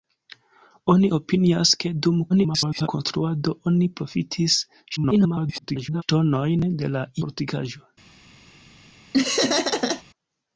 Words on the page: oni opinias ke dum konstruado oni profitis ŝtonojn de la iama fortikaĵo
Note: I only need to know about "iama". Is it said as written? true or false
false